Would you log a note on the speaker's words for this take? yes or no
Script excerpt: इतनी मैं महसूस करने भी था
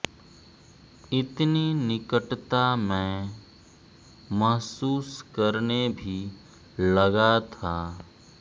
yes